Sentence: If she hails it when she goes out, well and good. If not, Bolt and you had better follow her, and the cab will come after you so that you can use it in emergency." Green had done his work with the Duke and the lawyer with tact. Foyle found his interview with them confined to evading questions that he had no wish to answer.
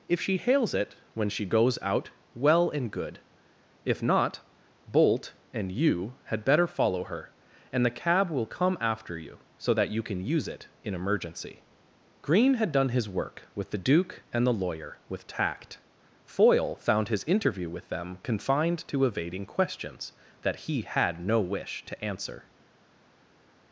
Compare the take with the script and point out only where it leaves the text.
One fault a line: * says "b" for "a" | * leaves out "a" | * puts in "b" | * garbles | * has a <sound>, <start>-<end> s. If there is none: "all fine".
all fine